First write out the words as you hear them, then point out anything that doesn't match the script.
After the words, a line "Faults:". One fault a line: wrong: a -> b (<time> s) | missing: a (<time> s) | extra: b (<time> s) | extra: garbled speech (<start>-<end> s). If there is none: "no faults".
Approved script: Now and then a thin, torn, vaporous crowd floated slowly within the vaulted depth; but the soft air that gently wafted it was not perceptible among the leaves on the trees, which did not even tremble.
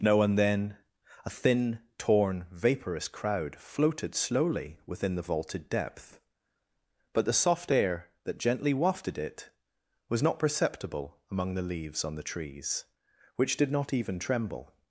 Now and then a thin, torn, vaporous crowd floated slowly within the vaulted depth; but the soft air that gently wafted it was not perceptible among the leaves on the trees, which did not even tremble.
Faults:
no faults